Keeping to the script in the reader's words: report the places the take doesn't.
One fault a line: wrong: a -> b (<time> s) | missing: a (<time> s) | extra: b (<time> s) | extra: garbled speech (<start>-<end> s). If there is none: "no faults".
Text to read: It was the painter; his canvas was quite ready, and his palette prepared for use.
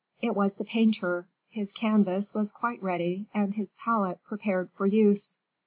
no faults